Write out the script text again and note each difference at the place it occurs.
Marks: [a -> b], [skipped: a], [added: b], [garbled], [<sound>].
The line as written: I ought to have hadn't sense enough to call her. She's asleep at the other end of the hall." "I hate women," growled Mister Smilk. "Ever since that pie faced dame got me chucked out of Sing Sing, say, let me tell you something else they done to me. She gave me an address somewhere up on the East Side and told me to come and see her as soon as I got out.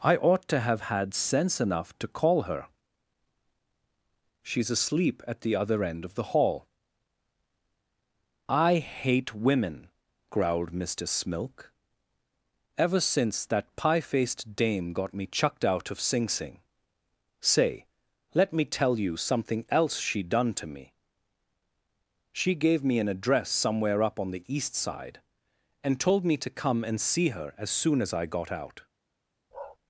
I ought to have [hadn't -> had] sense enough to call her. She's asleep at the other end of the hall." "I hate women," growled Mister Smilk. "Ever since that pie faced dame got me chucked out of Sing Sing, say, let me tell you something else [they -> she] done to me. She gave me an address somewhere up on the East Side and told me to come and see her as soon as I got out. [bark]